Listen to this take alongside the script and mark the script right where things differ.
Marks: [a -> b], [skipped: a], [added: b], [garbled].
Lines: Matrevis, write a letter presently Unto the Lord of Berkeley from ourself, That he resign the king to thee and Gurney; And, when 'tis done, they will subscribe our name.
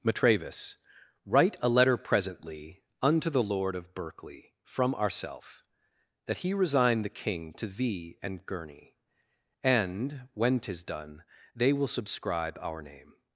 Matrevis, write a letter presently Unto the Lord of Berkeley from ourself, That he resign the king to thee and Gurney; And, when 'tis done, they will subscribe our name.